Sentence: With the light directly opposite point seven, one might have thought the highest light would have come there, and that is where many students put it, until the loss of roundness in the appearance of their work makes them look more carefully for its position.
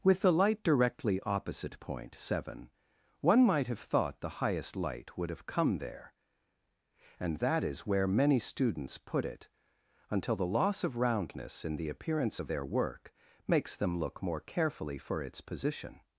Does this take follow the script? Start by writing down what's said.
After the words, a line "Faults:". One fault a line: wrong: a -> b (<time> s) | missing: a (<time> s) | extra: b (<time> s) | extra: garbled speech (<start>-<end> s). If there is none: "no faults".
With the light directly opposite point seven, one might have thought the highest light would have come there, and that is where many students put it, until the loss of roundness in the appearance of their work makes them look more carefully for its position.
Faults:
no faults